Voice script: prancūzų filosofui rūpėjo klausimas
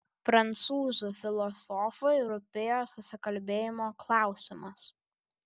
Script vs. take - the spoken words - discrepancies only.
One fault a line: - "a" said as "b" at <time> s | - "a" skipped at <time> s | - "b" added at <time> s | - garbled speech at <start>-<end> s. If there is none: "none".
- "susikalbėjimo" added at 2.9 s